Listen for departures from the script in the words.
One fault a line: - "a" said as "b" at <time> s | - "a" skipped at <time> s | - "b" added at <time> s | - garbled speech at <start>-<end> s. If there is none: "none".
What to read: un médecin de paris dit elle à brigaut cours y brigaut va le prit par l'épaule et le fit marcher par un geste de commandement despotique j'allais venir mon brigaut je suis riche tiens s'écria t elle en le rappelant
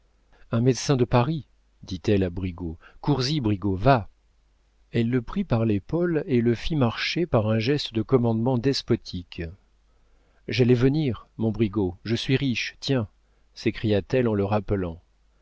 - "elle" added at 4.9 s